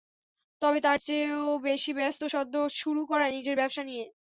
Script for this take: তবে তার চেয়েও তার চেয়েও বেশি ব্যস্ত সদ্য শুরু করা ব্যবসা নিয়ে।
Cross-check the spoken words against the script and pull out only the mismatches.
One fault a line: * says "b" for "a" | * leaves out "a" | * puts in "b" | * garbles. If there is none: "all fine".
* leaves out "তার চেয়েও"
* puts in "নিজের"